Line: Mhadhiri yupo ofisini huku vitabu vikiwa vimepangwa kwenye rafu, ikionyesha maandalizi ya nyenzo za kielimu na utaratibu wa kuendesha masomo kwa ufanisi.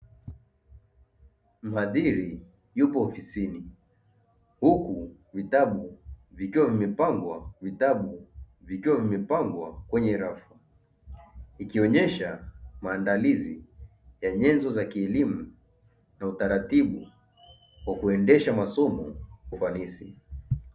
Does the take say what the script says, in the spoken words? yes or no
no